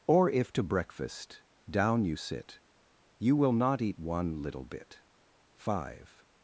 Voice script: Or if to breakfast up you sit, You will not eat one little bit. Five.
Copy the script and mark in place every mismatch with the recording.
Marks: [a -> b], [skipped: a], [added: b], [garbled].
Or if to breakfast [up -> down] you sit, You will not eat one little bit. Five.